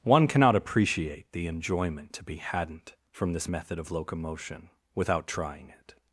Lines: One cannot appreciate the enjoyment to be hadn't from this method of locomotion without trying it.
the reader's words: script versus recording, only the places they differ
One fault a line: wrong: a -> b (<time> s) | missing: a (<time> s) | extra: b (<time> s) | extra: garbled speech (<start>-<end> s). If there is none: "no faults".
no faults